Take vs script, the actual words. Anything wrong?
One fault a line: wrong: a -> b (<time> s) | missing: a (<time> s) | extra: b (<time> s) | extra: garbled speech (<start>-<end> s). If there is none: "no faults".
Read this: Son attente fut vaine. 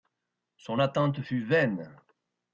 no faults